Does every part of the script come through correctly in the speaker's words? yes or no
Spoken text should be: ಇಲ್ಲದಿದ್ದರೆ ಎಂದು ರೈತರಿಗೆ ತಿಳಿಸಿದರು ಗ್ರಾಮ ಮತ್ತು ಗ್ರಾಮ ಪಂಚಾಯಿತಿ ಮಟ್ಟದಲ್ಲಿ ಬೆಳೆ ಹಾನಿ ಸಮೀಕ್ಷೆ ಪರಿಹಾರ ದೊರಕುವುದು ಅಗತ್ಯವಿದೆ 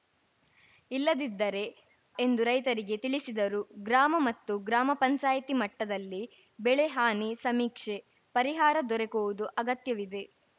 yes